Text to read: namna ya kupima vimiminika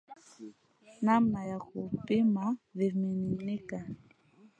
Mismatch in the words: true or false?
false